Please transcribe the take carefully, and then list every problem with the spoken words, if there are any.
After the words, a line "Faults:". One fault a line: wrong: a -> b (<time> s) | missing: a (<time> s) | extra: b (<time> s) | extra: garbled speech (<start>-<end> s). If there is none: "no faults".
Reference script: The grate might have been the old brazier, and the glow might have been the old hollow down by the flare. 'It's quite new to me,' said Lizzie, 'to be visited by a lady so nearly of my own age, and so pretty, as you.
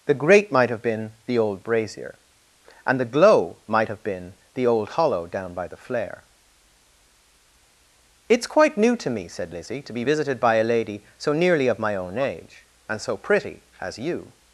The grate might have been the old brazier, and the glow might have been the old hollow down by the flare. 'It's quite new to me,' said Lizzie, 'to be visited by a lady so nearly of my own age, and so pretty, as you.
Faults:
no faults